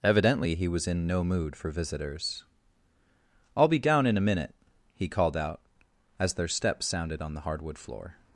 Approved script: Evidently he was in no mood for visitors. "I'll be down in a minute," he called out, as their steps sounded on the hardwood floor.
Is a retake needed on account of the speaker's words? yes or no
no